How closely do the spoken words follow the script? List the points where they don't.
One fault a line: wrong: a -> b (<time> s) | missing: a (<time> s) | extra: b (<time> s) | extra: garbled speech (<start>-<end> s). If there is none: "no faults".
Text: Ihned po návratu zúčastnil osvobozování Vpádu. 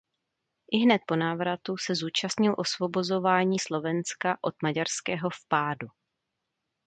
extra: se (1.8 s)
extra: Slovenska od maďarského (3.6 s)